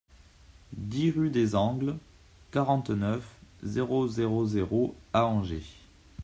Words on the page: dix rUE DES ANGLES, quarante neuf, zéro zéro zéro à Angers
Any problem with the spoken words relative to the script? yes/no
no